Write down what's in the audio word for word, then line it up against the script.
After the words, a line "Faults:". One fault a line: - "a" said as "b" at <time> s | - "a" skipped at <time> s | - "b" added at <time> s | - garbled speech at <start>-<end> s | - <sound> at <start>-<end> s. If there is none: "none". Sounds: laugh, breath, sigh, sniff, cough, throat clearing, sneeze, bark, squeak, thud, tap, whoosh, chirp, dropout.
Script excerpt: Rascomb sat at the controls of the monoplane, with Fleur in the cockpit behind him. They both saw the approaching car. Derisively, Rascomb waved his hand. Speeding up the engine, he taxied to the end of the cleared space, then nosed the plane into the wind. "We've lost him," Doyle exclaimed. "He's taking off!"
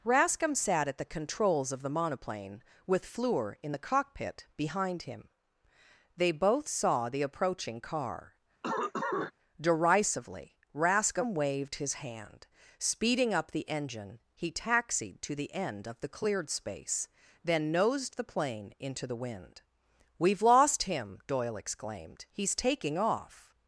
Rascomb sat at the controls of the monoplane, with Fleur in the cockpit behind him. They both saw the approaching car. Derisively, Rascomb waved his hand. Speeding up the engine, he taxied to the end of the cleared space, then nosed the plane into the wind. "We've lost him," Doyle exclaimed. "He's taking off!"
Faults:
- cough at 8.6-9.3 s